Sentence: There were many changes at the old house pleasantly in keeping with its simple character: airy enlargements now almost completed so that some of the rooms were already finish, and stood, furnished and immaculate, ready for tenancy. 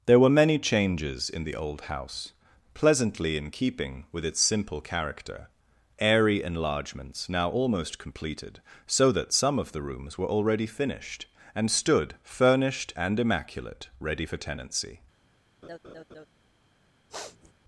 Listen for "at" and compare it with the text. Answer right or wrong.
wrong